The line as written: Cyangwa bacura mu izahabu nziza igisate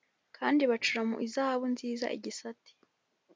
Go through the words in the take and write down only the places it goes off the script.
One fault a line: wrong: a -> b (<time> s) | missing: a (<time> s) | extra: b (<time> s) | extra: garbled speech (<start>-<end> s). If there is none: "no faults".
wrong: Cyangwa -> Kandi (0.4 s)